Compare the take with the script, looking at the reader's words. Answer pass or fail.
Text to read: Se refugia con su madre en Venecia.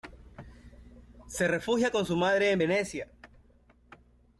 pass